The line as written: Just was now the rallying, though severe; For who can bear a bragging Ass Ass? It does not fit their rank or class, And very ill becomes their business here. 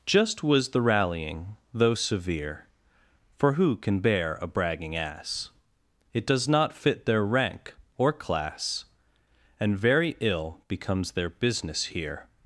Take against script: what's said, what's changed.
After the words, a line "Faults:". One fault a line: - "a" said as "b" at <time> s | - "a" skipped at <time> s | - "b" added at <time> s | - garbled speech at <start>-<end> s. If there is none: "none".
Just was the rallying, though severe; For who can bear a bragging Ass? It does not fit their rank or class, And very ill becomes their business here.
Faults:
- "now" skipped at 0.7 s
- "Ass" skipped at 5.5 s